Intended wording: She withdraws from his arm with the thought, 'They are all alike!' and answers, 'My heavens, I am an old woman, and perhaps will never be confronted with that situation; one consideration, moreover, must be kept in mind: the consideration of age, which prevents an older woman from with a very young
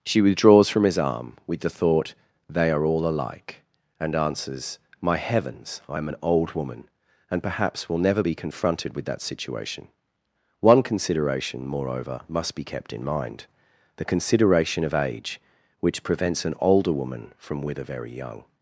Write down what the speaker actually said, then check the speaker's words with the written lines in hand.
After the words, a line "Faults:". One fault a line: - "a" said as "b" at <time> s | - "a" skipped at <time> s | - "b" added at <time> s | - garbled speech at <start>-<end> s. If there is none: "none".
She withdraws from his arm with the thought, 'They are all alike!' and answers, 'My heavens, I am an old woman, and perhaps will never be confronted with that situation; one consideration, moreover, must be kept in mind: the consideration of age, which prevents an older woman from with a very young
Faults:
none